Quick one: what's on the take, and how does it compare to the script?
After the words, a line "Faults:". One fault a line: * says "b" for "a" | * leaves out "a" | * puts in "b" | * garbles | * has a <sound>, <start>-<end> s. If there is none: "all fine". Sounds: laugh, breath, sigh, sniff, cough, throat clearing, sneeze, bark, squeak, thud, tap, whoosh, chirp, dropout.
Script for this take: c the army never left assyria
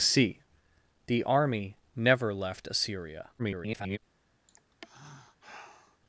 c the army never left assyria [garbled]
Faults:
* garbles
* has a sigh, 4.5-6.0 s